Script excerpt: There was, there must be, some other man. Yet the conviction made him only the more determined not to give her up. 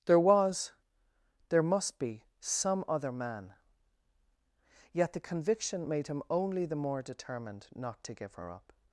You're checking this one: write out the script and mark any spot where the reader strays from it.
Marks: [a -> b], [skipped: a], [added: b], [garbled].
There was, there must be, some other man. Yet the conviction made him only the more determined not to give her up.